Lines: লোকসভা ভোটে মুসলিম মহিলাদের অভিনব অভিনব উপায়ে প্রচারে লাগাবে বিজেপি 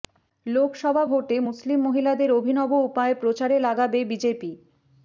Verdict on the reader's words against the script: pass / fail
fail